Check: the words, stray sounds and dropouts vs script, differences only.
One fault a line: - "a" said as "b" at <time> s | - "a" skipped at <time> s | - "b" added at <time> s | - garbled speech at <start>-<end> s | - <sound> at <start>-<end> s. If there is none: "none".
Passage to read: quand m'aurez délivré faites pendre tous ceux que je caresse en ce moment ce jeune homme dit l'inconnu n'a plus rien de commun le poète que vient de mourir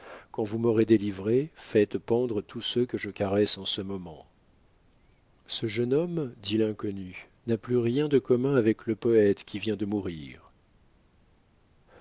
- "vous" added at 0.4 s
- "avec" added at 8.5 s
- "que" said as "qui" at 9.4 s